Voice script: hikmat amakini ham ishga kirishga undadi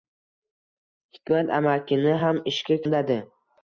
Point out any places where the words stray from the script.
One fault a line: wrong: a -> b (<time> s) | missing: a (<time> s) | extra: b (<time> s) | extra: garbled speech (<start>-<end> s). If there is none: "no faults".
missing: kirishga (2.8 s)